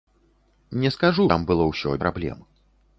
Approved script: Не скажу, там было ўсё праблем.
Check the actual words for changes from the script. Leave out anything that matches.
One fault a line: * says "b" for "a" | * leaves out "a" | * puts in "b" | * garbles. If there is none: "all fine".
all fine